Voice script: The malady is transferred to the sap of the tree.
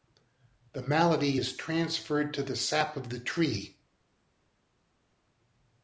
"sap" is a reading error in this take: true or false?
false